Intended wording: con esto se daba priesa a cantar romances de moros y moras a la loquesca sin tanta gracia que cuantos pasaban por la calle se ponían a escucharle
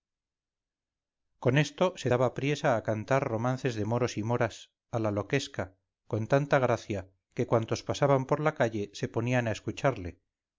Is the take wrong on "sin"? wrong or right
wrong